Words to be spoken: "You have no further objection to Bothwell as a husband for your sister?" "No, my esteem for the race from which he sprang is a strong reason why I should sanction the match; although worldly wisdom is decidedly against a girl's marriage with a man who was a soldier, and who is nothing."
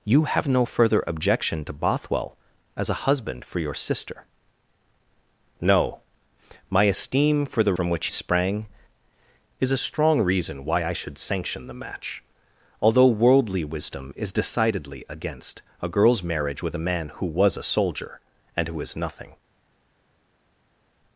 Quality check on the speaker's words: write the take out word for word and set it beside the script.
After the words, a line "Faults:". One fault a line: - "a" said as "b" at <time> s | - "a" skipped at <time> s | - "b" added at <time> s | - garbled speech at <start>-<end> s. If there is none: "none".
"You have no further objection to Bothwell as a husband for your sister?" "No, my esteem for the from which sprang is a strong reason why I should sanction the match; although worldly wisdom is decidedly against a girl's marriage with a man who was a soldier, and who is nothing."
Faults:
- "race" skipped at 7.8 s
- "he" skipped at 8.1 s